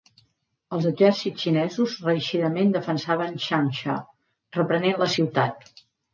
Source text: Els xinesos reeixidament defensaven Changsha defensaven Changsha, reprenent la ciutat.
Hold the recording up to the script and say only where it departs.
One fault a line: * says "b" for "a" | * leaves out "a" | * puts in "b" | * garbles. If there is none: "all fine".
* puts in "exèrcits"
* leaves out "defensaven Changsha"